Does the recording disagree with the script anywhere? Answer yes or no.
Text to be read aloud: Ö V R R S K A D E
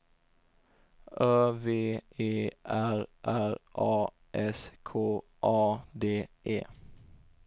yes